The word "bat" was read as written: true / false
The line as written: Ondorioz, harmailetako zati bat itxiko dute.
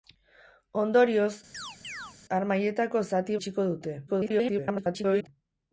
false